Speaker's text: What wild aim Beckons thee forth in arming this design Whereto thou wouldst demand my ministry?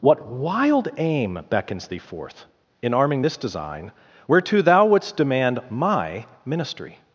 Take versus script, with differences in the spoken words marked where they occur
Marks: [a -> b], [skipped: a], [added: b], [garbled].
What wild aim Beckons thee forth in arming this design Whereto thou wouldst demand my ministry?